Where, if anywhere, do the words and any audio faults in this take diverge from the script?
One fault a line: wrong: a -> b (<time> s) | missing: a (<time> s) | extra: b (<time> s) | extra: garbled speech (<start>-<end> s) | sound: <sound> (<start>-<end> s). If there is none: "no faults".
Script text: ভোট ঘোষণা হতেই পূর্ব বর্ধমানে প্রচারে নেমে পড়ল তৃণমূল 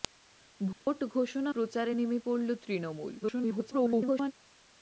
sound: dropout (0.7-0.9 s)
missing: হতেই পূর্ব বর্ধমানে (1.5 s)
extra: garbled speech (3.2-4.3 s)